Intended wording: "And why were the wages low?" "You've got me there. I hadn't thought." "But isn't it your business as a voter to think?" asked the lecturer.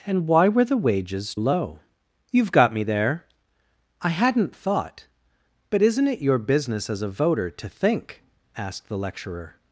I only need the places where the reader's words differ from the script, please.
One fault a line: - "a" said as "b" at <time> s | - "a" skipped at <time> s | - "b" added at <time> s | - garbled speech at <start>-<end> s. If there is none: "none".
none